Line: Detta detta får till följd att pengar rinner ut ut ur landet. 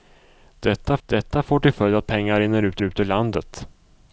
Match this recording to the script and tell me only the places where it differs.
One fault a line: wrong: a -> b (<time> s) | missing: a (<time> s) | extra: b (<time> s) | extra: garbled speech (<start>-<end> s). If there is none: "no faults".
no faults